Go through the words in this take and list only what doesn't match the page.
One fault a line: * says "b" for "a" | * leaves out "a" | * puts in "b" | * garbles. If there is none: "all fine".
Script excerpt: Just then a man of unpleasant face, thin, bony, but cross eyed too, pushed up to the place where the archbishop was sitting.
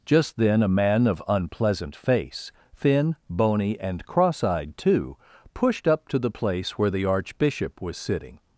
* says "and" for "but"